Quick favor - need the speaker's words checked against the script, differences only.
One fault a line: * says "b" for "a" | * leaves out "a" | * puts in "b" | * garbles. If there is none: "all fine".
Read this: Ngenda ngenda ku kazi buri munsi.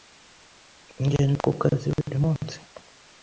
* leaves out "ngenda"